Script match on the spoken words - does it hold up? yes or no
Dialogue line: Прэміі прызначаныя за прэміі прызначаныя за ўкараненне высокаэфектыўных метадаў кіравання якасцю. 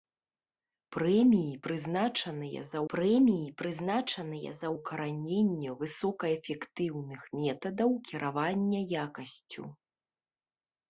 yes